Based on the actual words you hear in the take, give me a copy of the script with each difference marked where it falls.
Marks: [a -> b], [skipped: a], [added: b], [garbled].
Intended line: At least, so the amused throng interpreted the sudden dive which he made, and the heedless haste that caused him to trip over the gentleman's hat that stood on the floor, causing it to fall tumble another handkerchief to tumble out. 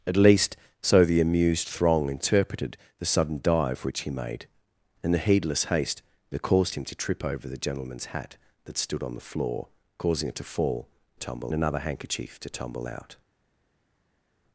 At least, so the amused throng interpreted the sudden dive which he made, and the heedless haste that caused him to trip over the gentleman's hat that stood on the floor, causing it to fall tumble another handkerchief to tumble out.